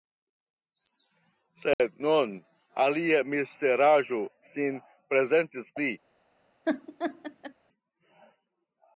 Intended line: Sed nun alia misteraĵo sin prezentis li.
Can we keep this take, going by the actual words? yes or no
yes